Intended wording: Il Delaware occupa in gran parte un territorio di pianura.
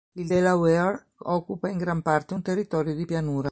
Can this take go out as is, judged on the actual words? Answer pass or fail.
pass